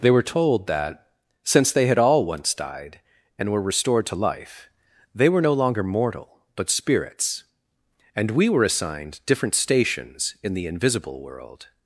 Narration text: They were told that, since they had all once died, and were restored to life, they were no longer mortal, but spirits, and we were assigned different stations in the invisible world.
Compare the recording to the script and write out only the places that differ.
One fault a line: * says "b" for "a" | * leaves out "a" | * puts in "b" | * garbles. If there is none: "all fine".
all fine